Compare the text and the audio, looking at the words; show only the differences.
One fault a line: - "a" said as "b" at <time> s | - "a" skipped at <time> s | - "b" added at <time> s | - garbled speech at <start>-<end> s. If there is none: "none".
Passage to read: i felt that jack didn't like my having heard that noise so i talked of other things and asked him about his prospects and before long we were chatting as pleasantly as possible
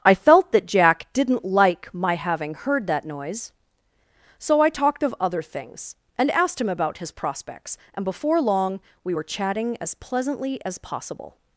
none